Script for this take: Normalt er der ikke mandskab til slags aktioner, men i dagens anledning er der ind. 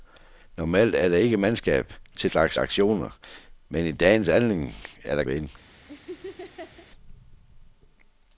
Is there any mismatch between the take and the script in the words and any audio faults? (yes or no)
yes